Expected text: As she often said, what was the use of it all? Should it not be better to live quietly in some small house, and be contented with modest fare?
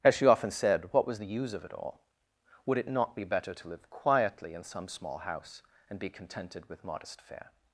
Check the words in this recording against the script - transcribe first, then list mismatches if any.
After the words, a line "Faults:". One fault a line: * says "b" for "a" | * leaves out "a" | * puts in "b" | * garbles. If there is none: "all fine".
As she often said, what was the use of it all? Would it not be better to live quietly in some small house, and be contented with modest fare?
Faults:
* says "Would" for "Should"